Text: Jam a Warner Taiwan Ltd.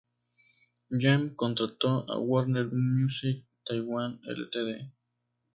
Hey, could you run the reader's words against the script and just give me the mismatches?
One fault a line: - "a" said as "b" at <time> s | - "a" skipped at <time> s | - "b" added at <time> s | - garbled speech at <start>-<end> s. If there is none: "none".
- "contrató" added at 1.4 s
- "Music" added at 2.7 s